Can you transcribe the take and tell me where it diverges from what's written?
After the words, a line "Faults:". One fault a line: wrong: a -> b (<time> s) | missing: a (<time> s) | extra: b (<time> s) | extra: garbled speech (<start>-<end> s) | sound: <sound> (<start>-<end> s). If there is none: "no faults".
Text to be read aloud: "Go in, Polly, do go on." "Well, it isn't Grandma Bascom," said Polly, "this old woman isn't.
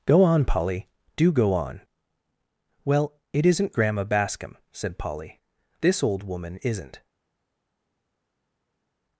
"Go on, Polly, do go on." "Well, it isn't Grandma Bascom," said Polly, "this old woman isn't.
Faults:
wrong: in -> on (0.2 s)